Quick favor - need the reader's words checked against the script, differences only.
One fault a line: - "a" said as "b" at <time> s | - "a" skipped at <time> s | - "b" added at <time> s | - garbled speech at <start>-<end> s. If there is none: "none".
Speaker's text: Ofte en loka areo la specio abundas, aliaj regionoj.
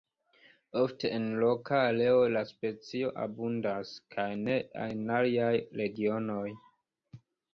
- "kaj ne en" added at 4.2 s